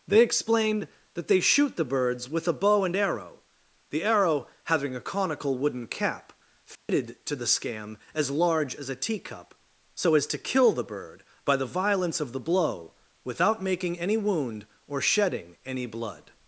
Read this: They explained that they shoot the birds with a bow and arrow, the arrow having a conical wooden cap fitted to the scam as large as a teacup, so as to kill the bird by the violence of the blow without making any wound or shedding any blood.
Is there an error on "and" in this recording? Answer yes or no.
no